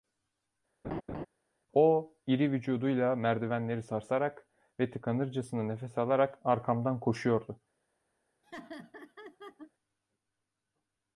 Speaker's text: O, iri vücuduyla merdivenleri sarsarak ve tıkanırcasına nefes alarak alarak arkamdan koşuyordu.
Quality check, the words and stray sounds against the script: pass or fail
fail